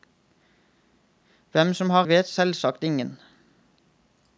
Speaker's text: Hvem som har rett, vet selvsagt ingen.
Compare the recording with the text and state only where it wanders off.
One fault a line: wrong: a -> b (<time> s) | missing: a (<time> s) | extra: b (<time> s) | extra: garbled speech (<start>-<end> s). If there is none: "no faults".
missing: rett (2.1 s)